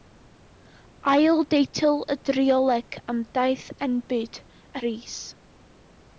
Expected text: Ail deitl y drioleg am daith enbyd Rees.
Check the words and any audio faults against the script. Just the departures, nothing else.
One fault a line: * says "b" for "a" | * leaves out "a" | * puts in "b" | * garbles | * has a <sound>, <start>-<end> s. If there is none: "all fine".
all fine